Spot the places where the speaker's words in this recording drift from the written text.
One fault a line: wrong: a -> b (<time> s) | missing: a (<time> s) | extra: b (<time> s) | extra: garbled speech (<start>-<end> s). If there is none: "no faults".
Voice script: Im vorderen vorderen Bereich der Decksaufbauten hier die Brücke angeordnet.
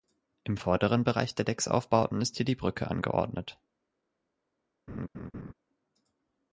missing: vorderen (1.0 s)
extra: ist (2.2 s)